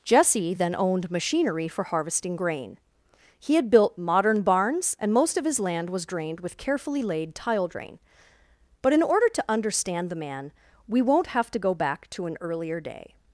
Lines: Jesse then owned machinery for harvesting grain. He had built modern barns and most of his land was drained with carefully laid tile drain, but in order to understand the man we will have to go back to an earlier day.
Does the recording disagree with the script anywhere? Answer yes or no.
yes